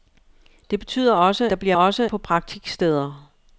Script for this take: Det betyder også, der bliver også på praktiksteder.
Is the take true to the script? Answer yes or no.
yes